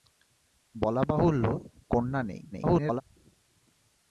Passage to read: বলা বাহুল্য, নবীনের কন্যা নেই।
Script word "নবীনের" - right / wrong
wrong